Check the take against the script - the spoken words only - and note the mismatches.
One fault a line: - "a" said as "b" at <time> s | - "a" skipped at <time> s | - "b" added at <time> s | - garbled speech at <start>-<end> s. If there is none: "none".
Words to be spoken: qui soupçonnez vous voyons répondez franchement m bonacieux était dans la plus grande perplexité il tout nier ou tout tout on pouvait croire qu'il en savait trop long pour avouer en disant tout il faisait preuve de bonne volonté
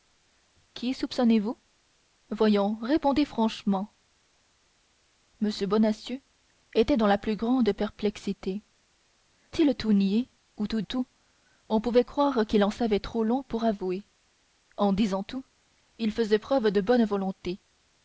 none